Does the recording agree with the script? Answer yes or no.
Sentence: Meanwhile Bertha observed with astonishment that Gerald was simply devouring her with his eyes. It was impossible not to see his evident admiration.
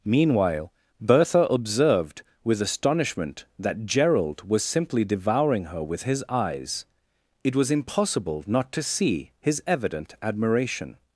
yes